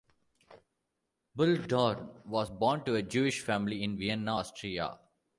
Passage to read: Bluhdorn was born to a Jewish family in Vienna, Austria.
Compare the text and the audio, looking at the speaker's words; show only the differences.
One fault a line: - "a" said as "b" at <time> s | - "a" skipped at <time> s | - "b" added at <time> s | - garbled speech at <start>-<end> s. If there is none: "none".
none